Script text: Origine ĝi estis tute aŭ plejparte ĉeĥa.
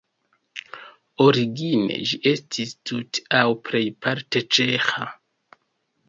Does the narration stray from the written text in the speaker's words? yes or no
no